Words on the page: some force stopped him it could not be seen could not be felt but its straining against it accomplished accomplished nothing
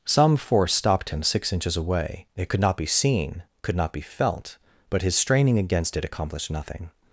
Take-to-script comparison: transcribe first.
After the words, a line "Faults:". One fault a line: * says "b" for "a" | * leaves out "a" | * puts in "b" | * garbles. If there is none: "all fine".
some force stopped him six inches away it could not be seen could not be felt but his straining against it accomplished nothing
Faults:
* puts in "six inches away"
* says "his" for "its"
* leaves out "accomplished"